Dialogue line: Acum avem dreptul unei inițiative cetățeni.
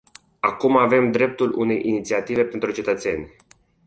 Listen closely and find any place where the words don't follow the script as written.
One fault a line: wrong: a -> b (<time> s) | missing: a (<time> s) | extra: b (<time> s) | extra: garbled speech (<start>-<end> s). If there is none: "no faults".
extra: pentru (2.4 s)